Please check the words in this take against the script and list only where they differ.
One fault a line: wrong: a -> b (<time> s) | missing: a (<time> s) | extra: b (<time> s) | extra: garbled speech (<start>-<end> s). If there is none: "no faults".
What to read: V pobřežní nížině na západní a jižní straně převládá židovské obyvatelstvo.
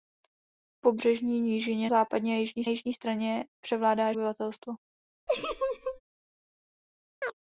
missing: na (1.9 s)
extra: jižní (2.7 s)
missing: židovské (4.1 s)